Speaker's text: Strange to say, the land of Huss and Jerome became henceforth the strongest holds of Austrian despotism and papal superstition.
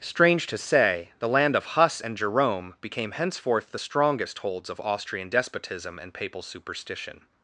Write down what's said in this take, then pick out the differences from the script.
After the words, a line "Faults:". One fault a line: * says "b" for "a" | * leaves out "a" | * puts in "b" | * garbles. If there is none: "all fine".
Strange to say, the land of Huss and Jerome became henceforth the strongest holds of Austrian despotism and papal superstition.
Faults:
all fine